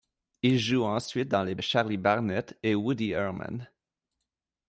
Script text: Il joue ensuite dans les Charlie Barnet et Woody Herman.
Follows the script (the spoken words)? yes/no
yes